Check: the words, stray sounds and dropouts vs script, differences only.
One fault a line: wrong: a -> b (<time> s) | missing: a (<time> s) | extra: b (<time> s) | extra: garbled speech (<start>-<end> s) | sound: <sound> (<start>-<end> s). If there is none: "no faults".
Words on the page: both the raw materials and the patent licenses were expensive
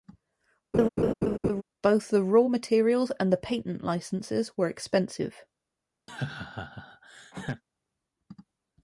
sound: laugh (0.7-1.6 s)
sound: laugh (6.1-7.6 s)